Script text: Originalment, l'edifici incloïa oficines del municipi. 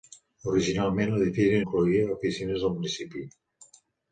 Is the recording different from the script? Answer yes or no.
no